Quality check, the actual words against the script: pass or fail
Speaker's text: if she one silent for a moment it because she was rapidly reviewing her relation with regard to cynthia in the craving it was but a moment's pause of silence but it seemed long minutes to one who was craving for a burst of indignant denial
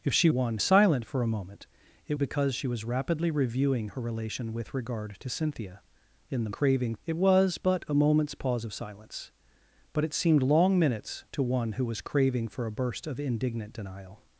pass